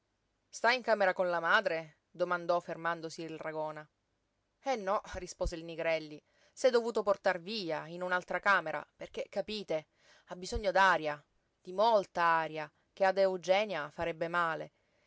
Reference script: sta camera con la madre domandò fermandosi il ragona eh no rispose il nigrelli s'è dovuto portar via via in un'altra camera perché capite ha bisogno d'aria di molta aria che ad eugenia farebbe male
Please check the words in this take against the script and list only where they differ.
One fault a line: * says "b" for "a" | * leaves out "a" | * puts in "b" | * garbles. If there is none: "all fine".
* puts in "in"
* leaves out "via"